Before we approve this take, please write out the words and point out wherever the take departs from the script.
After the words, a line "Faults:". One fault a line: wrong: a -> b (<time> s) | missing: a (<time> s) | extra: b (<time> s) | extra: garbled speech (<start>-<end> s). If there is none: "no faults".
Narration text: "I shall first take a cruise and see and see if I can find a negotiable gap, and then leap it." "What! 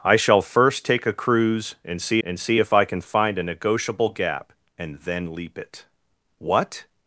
"I shall first take a cruise and see and see if I can find a negotiable gap, and then leap it." "What!
Faults:
no faults